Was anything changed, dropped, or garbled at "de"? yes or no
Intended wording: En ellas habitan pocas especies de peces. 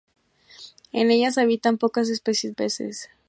yes